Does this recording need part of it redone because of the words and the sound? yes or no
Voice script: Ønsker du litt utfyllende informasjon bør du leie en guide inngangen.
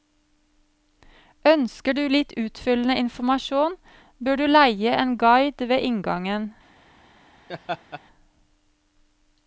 yes